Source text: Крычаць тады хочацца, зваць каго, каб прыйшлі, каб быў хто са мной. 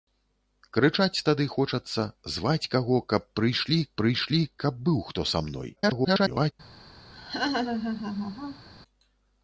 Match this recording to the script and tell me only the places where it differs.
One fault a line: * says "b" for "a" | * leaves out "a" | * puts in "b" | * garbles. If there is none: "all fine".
* puts in "прыйшлі"
* garbles